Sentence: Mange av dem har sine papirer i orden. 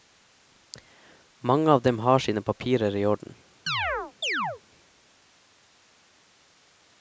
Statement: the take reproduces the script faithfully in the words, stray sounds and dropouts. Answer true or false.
false